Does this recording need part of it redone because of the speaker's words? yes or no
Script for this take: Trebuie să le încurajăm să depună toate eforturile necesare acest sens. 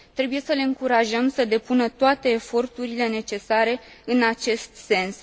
yes